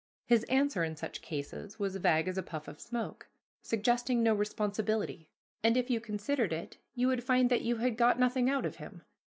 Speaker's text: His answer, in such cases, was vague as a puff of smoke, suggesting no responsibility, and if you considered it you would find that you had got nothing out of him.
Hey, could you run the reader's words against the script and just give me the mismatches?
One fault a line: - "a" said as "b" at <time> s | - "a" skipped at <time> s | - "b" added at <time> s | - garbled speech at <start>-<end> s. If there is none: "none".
none